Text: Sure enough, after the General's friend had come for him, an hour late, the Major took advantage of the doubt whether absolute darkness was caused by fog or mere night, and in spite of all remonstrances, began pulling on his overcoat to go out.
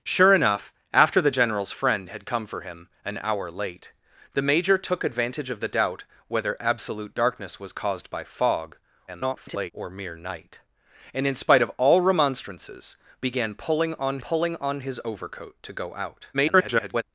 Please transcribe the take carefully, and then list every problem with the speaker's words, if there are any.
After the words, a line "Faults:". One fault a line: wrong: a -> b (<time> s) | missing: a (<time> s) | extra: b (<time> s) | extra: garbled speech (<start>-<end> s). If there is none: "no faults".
Sure enough, after the General's friend had come for him, an hour late, the Major took advantage of the doubt whether absolute darkness was caused by fog [garbled] or mere night, and in spite of all remonstrances, began pulling on pulling on his overcoat to go out. [garbled]
Faults:
extra: garbled speech (9.1-9.7 s)
extra: pulling on (14.2 s)
extra: garbled speech (16.3-17.0 s)